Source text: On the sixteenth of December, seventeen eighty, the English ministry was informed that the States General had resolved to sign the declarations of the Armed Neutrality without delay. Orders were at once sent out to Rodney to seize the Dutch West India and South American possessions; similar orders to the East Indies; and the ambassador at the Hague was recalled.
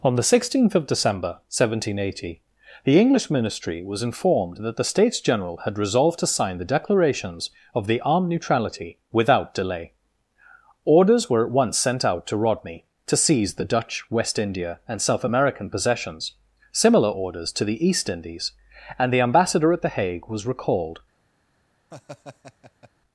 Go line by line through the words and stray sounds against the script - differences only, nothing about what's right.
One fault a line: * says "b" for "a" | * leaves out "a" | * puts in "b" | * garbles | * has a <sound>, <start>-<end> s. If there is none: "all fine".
* has a laugh, 21.9-22.9 s